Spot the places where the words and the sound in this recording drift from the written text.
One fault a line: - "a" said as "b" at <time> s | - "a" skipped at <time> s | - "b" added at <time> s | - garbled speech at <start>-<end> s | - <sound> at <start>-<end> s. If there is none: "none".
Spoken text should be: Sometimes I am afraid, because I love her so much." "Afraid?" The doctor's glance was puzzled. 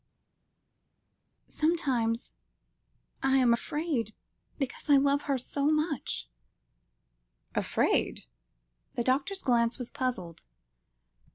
none